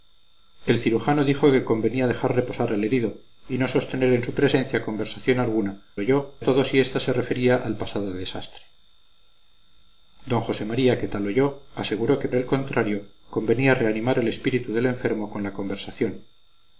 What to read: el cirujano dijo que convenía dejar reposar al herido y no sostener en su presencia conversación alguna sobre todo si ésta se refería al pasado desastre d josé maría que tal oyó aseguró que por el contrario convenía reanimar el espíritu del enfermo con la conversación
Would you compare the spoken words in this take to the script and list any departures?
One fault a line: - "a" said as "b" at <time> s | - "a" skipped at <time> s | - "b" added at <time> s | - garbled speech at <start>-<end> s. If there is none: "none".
- "sobre" said as "oyó" at 6.0 s
- "por" skipped at 12.3 s